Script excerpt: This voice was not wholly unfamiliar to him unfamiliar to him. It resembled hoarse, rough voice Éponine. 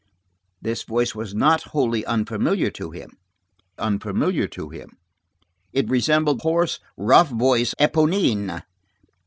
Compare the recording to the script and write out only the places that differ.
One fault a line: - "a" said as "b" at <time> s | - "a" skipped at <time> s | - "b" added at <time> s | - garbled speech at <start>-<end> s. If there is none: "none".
none